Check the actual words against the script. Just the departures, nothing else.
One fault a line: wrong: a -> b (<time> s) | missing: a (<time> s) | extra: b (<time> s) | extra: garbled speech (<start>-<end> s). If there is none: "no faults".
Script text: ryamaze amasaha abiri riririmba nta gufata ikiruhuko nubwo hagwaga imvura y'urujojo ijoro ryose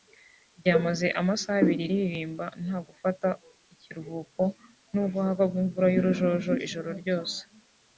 no faults